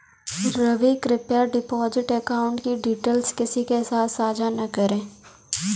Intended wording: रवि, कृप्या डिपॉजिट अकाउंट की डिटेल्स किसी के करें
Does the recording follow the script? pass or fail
fail